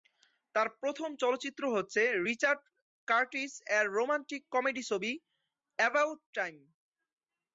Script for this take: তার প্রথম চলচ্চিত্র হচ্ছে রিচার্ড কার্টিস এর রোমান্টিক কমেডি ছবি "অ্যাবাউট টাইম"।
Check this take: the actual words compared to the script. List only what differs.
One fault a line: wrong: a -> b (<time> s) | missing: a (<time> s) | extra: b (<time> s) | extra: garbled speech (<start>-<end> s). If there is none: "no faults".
no faults